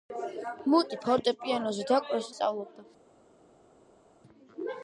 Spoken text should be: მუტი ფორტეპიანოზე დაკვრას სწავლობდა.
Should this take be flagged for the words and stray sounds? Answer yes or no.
no